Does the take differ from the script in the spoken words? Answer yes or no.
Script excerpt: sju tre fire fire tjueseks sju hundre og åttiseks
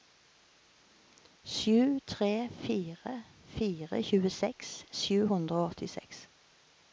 no